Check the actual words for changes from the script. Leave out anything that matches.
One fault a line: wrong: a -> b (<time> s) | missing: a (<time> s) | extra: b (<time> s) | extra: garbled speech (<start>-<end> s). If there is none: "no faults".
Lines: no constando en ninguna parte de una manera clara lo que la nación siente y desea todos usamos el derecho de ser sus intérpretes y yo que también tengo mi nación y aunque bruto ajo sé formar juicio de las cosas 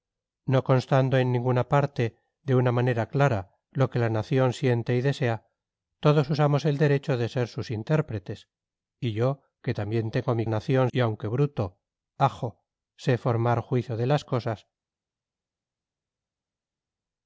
no faults